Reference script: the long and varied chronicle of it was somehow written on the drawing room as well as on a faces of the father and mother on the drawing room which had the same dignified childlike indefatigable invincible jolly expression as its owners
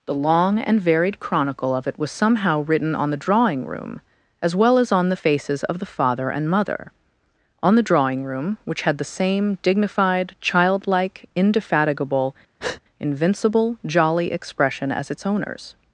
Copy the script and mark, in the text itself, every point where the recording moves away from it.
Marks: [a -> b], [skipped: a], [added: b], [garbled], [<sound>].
the long and varied chronicle of it was somehow written on the drawing room as well as on [a -> the] faces of the father and mother on the drawing room which had the same dignified childlike indefatigable [breath] invincible jolly expression as its owners